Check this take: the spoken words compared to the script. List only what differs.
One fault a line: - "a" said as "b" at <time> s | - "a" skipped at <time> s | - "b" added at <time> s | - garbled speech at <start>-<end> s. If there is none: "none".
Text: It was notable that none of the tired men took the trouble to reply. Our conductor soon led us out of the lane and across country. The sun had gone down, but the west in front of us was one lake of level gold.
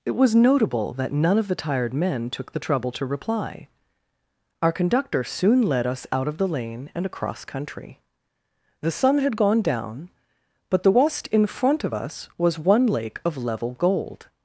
none